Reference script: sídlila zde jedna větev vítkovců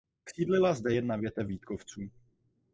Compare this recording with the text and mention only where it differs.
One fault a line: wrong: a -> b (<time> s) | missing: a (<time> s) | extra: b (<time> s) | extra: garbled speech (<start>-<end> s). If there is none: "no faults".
no faults